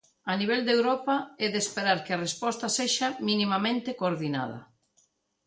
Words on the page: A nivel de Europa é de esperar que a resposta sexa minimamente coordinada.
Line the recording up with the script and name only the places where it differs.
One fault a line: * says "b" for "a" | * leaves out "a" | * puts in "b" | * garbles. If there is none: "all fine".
all fine